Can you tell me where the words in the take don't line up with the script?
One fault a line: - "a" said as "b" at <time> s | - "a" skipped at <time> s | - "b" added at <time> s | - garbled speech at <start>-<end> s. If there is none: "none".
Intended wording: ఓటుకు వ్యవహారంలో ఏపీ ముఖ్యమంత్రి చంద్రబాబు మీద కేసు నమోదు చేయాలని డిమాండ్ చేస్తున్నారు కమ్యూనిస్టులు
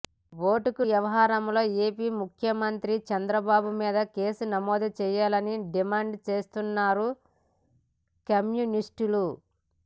none